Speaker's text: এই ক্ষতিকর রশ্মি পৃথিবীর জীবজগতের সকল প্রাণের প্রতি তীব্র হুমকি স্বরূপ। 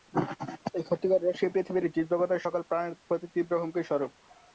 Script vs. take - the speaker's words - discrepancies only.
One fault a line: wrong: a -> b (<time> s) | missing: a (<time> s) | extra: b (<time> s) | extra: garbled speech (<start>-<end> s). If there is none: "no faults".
no faults